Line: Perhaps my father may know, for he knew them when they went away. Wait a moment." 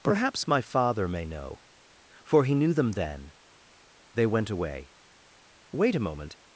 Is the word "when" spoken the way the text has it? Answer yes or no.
no